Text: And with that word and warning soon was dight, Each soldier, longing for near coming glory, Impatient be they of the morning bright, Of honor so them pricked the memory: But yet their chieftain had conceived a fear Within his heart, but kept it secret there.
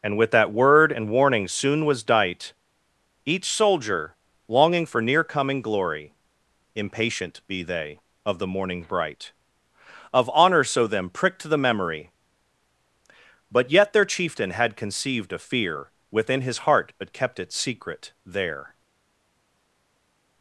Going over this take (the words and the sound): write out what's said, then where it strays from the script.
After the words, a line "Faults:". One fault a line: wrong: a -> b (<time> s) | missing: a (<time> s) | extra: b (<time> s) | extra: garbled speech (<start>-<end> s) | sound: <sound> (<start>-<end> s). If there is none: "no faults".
And with that word and warning soon was dight, Each soldier, longing for near coming glory, Impatient be they of the morning bright, Of honor so them pricked the memory: But yet their chieftain had conceived a fear Within his heart, but kept it secret there.
Faults:
no faults